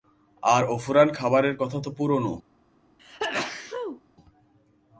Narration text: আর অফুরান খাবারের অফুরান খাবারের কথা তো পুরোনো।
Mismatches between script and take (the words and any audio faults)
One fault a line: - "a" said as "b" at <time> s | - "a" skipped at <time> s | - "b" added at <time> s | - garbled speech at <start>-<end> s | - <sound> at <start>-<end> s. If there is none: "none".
- "অফুরান খাবারের" skipped at 1.6 s
- sneeze at 3.0-4.0 s